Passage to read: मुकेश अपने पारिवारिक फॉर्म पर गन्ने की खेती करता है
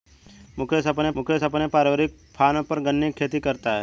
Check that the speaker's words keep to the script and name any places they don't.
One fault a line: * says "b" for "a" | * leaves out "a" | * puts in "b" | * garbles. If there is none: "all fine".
* puts in "मुकेश अपने"